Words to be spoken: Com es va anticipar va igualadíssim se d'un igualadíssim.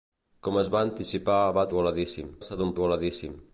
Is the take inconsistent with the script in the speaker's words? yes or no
no